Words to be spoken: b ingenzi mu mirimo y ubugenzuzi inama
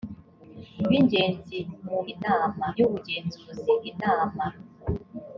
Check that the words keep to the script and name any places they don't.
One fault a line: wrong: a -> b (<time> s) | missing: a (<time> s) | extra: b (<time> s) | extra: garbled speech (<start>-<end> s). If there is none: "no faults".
wrong: mirimo -> inama (2.1 s)